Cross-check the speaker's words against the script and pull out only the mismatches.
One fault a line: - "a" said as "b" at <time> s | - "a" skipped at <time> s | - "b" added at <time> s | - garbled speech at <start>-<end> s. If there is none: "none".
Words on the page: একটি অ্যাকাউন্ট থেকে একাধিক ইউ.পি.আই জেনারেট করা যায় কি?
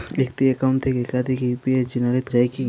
- "করা" skipped at 2.2 s